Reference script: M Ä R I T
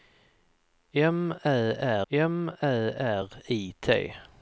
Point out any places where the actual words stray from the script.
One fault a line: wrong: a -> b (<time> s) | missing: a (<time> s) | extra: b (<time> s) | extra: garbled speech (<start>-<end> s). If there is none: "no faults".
extra: m Ä (2.1 s)